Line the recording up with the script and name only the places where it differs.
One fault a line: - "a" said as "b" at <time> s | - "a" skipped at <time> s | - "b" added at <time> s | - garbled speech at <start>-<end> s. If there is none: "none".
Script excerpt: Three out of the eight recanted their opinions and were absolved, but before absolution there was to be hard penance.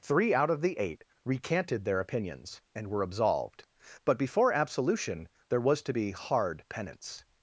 none